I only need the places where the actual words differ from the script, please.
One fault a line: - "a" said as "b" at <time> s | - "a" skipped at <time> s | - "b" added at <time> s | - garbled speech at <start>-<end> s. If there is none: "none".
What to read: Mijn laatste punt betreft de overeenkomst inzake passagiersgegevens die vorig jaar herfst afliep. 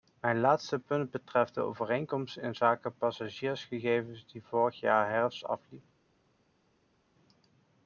none